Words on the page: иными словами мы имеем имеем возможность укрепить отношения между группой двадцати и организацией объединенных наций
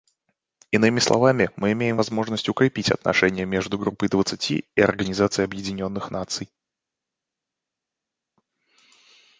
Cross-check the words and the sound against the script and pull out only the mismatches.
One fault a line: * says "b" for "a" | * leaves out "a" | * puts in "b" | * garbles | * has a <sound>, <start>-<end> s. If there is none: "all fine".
* leaves out "имеем"